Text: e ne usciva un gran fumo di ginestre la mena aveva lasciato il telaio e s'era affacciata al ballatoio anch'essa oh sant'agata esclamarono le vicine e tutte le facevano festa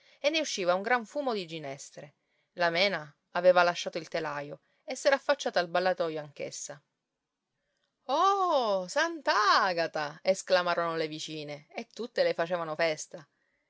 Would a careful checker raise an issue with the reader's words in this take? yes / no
no